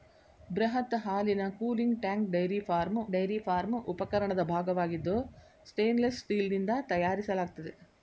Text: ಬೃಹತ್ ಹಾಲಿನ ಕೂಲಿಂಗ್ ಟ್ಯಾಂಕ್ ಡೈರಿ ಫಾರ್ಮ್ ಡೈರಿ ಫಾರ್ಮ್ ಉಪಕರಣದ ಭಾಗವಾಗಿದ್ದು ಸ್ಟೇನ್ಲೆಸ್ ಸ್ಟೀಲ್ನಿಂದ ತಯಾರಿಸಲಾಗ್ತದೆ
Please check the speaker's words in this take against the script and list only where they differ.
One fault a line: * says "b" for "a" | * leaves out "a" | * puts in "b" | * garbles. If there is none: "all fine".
all fine